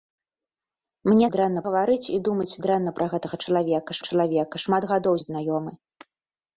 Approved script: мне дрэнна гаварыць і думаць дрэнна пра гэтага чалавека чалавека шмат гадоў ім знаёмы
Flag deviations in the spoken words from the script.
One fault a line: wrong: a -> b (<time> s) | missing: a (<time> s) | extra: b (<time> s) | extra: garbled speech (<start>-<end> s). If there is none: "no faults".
no faults